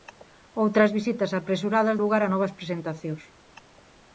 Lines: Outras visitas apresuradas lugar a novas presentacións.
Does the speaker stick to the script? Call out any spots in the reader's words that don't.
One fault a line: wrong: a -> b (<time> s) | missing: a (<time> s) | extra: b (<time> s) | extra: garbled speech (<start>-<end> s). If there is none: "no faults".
no faults